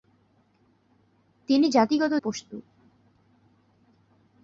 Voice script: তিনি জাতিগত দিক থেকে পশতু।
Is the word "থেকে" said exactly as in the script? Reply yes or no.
no